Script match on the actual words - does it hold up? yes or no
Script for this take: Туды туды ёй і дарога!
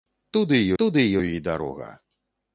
yes